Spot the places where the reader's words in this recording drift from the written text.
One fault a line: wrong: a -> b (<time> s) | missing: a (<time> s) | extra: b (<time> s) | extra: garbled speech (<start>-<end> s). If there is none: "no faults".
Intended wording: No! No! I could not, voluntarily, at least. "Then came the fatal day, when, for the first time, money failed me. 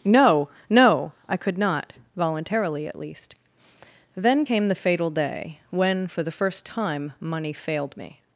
no faults